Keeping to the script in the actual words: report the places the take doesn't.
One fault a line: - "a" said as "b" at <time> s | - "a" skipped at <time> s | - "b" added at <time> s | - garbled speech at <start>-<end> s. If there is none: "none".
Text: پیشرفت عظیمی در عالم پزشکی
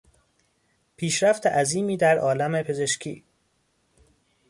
none